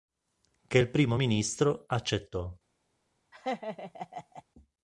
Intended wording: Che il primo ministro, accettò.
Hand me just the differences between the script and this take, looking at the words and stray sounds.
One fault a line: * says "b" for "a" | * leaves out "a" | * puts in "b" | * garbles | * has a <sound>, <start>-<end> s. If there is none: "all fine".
* has a laugh, 3.3-4.4 s